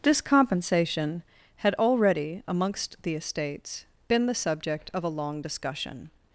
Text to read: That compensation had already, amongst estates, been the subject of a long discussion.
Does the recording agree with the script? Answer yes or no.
no